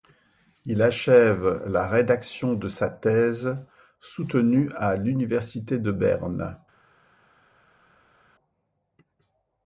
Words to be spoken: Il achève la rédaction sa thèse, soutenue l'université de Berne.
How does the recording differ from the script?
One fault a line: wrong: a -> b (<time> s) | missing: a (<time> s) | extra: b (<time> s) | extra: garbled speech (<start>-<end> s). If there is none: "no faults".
extra: de (2.5 s)
extra: à (4.8 s)